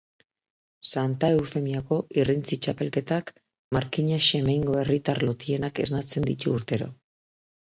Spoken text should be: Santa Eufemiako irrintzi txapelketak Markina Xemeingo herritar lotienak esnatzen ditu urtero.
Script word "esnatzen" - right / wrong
right